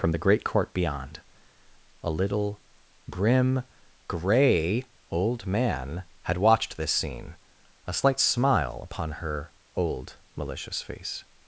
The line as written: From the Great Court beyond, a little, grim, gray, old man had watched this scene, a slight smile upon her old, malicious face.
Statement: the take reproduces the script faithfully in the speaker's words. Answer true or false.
true